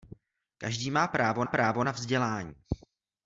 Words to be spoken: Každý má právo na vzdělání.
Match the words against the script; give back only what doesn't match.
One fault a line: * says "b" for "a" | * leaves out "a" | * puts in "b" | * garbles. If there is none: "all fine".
* puts in "právo"